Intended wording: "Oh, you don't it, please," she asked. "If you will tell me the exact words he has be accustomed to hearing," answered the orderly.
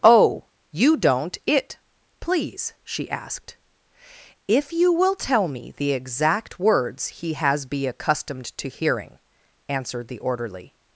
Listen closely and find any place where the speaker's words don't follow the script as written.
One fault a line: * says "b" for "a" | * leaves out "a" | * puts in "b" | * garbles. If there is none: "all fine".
all fine